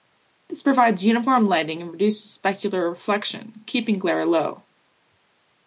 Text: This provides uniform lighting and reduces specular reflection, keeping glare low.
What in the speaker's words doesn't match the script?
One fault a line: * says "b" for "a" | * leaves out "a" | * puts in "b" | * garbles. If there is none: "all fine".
all fine